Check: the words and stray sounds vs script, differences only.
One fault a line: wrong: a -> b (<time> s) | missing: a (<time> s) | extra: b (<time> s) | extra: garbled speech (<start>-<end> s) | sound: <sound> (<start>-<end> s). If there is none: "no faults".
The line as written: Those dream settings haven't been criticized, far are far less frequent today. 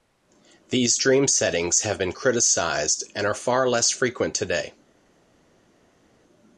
wrong: Those -> These (0.7 s)
wrong: haven't -> have (1.8 s)
wrong: far -> and (3.2 s)